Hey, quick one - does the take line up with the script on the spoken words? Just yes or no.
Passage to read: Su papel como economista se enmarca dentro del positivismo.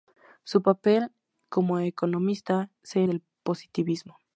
no